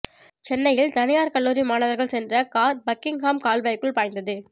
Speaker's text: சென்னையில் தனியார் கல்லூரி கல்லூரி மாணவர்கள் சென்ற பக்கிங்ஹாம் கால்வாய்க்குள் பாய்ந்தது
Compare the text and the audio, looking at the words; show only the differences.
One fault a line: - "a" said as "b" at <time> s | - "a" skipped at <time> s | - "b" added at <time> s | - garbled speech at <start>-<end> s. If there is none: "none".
- "கல்லூரி" skipped at 1.6 s
- "கார்" added at 2.5 s